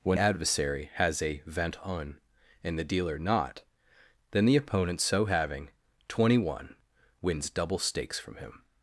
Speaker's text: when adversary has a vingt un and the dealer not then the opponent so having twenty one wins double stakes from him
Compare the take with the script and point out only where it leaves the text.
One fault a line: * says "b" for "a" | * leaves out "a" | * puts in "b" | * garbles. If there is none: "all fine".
all fine